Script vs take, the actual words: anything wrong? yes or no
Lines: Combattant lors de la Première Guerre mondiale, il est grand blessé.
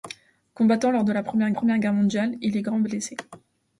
yes